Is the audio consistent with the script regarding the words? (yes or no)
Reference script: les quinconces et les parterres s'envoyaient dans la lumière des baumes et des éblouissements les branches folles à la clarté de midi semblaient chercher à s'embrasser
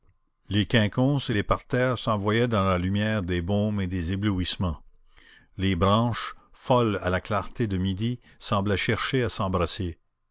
yes